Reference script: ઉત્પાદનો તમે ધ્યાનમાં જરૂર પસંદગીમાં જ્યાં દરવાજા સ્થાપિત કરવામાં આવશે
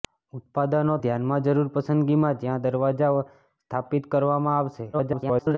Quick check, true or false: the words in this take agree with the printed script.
false